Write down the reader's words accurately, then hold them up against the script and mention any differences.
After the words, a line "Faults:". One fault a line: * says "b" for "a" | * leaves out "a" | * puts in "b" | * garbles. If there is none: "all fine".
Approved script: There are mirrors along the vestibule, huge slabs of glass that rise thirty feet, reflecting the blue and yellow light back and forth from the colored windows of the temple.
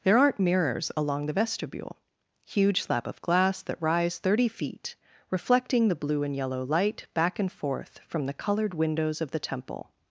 There aren't mirrors along the vestibule, huge slab of glass that rise thirty feet, reflecting the blue and yellow light back and forth from the colored windows of the temple.
Faults:
* says "aren't" for "are"
* says "slab" for "slabs"